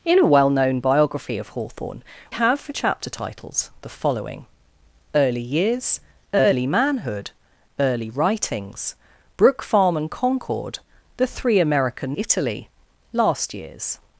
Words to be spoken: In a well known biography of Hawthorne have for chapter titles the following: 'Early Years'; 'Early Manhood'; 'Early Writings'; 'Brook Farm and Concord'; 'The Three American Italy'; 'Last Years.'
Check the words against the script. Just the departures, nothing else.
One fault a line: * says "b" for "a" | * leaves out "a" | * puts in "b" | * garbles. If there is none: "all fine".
all fine